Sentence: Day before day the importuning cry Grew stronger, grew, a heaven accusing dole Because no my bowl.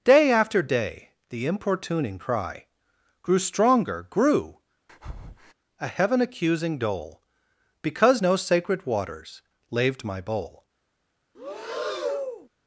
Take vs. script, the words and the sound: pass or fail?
fail